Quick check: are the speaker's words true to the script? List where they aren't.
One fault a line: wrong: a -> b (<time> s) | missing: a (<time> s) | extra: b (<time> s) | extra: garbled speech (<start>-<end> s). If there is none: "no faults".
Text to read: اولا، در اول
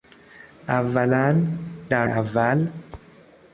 no faults